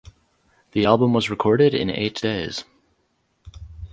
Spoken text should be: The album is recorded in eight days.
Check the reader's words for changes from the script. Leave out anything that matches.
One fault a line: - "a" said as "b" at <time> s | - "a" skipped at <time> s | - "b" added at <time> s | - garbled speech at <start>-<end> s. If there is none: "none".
- "is" said as "was" at 1.1 s